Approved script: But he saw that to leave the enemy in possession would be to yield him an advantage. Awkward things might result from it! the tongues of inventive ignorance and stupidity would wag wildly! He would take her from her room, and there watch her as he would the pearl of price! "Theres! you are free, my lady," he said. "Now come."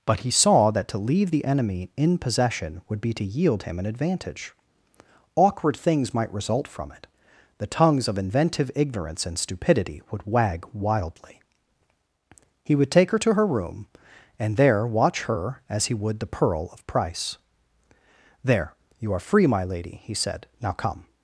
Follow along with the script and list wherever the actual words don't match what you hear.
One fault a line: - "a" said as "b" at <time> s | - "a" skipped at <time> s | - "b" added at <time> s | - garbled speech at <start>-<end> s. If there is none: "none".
- "from" said as "to" at 13.2 s
- "Theres" said as "There" at 18.4 s